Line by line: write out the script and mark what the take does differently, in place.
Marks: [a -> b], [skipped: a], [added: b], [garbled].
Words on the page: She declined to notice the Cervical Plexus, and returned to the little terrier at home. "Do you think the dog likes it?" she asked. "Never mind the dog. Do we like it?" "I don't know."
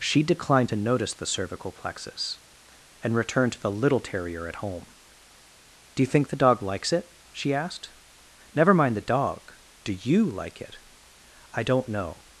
She declined to notice the Cervical Plexus, and returned to the little terrier at home. "Do you think the dog likes it?" she asked. "Never mind the dog. Do [we -> you] like it?" "I don't know."